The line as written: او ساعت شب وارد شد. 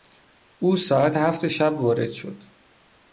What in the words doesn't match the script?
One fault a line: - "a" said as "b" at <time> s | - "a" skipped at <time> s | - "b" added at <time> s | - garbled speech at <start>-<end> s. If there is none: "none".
- "هفت" added at 1.1 s